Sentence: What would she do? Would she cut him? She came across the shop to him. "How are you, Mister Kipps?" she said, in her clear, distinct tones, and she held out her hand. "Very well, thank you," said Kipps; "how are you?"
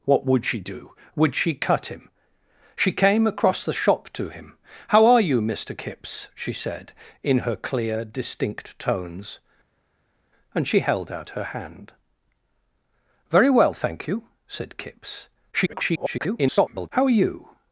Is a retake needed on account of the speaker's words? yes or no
yes